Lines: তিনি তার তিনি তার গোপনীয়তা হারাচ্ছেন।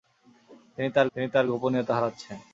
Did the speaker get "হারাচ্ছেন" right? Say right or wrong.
right